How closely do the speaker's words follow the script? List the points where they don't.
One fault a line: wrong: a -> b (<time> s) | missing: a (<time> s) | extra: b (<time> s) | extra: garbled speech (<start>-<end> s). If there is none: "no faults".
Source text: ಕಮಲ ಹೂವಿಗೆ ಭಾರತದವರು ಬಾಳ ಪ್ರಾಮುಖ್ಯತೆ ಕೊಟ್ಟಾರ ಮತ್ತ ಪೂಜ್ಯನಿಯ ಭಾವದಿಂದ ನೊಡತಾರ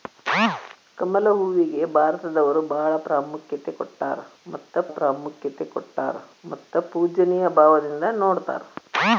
extra: ಪ್ರಾಮುಖ್ಯತೆ ಕೊಟ್ಟಾರ ಮತ್ತ (4.9 s)